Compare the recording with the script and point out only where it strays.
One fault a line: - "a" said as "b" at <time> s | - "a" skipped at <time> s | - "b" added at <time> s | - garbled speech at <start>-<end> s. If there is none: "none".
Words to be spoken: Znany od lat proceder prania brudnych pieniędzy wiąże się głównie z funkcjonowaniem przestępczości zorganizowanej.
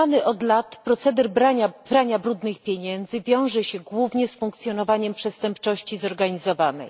none